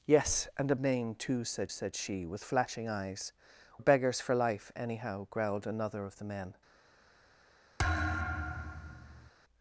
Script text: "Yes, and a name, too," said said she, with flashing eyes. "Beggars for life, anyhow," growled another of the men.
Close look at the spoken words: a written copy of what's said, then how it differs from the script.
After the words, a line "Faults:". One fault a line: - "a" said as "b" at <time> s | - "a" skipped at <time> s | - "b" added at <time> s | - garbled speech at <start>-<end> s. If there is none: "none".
"Yes, and a name, too," said said she, with flashing eyes. "Beggars for life, anyhow," growled another of the men.
Faults:
none